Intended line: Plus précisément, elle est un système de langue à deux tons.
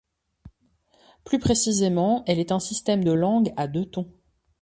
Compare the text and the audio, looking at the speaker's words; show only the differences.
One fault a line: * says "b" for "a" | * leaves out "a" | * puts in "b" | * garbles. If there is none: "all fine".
all fine